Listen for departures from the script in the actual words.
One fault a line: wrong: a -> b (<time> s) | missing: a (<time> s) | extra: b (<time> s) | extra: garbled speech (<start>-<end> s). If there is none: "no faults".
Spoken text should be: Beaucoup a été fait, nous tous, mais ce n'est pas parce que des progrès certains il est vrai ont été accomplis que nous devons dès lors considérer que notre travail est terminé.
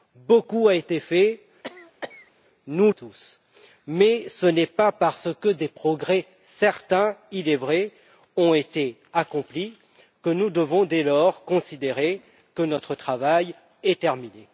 no faults